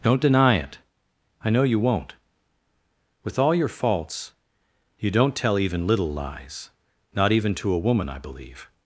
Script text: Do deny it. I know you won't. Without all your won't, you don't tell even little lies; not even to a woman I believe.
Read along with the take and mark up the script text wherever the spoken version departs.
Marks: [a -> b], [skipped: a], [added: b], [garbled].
[Do -> Don't] deny it. I know you won't. [Without -> With] all your [won't, -> faults] you don't tell even little lies; not even to a woman I believe.